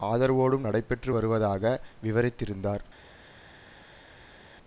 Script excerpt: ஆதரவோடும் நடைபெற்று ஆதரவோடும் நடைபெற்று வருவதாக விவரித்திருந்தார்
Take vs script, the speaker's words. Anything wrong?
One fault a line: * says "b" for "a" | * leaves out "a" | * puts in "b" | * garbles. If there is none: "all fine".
* leaves out "ஆதரவோடும் நடைபெற்று"